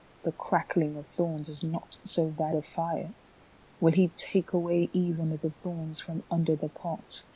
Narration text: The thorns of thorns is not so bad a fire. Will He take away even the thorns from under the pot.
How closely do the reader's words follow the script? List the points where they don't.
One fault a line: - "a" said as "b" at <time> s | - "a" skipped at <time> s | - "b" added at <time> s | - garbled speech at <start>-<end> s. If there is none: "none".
- "thorns" said as "crackling" at 0.3 s